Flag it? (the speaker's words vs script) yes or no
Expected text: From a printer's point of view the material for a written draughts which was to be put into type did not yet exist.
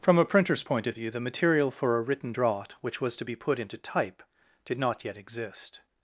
yes